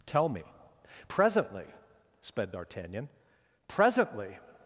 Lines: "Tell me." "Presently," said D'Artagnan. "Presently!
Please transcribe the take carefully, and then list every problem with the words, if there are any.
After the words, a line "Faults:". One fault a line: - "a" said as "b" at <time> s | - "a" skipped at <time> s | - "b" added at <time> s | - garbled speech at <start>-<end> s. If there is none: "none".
"Tell me." "Presently," sped D'Artagnan. "Presently!
Faults:
- "said" said as "sped" at 2.2 s